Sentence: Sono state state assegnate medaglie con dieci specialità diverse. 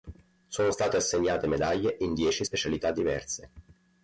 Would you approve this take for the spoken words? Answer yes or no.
no